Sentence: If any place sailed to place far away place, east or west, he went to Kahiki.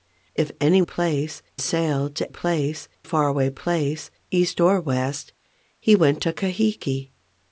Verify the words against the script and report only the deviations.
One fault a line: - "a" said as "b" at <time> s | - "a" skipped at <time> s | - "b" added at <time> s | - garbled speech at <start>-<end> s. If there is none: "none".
none